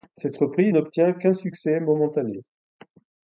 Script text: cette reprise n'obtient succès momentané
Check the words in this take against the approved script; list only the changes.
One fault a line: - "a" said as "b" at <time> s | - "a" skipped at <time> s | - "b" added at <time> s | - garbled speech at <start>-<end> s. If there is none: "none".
- "qu'un" added at 1.1 s